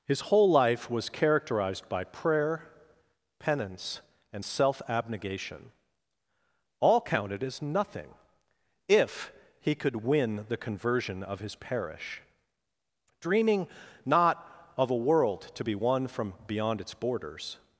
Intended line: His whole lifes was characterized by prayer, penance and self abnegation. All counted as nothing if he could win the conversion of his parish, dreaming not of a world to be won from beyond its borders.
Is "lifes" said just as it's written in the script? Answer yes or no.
no